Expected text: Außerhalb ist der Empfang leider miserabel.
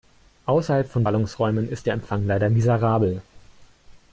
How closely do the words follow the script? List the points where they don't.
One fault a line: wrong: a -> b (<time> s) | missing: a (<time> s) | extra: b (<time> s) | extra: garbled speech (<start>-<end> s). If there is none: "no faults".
extra: von Ballungsräumen (0.9 s)